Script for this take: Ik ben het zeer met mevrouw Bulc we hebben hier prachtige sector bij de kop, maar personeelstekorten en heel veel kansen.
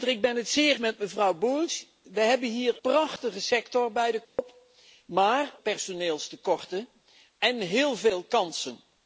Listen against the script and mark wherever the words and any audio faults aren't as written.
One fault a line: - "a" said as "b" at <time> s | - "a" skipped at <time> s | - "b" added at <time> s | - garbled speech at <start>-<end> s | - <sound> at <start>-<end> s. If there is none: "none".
- dropout at 4.2-4.4 s